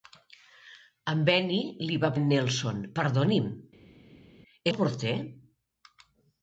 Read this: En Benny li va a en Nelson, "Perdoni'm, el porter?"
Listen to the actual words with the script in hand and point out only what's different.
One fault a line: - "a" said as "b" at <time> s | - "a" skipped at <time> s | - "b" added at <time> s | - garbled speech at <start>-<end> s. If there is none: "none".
none